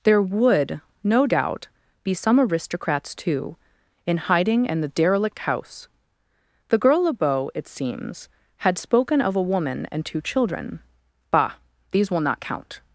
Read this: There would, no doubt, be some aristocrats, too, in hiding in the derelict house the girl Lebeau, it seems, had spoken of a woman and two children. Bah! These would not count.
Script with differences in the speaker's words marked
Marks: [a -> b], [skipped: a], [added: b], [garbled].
There would, no doubt, be some aristocrats, too, in hiding in the derelict house the girl Lebeau, it seems, had spoken of a woman and two children. Bah! These [would -> will] not count.